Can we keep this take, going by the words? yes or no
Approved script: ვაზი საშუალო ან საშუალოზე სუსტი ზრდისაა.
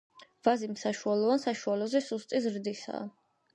yes